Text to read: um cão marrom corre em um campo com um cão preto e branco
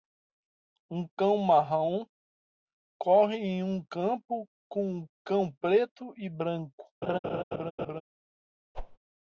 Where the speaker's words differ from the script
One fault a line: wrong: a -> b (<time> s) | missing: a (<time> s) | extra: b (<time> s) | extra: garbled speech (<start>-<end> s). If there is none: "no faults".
no faults